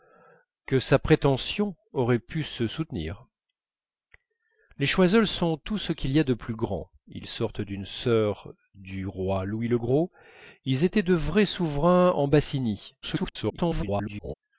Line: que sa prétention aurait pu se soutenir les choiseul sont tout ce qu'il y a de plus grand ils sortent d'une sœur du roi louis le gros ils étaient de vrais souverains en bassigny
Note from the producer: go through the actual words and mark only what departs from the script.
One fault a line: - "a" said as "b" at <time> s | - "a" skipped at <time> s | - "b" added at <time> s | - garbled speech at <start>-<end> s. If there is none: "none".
- garbled speech at 13.0-14.3 s